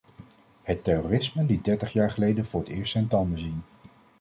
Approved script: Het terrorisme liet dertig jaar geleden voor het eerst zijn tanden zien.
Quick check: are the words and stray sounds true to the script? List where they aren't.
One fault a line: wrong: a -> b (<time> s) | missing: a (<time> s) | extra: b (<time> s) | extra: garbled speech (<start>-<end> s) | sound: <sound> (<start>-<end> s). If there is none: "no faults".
no faults